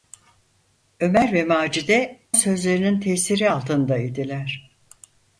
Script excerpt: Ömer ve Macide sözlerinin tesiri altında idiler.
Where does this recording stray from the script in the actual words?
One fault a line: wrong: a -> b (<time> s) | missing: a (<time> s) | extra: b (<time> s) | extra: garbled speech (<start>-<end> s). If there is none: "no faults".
no faults